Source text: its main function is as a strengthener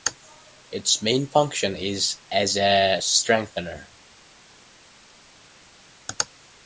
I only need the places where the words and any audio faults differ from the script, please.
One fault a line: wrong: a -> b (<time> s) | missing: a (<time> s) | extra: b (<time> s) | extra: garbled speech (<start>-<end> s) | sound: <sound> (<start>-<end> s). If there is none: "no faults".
no faults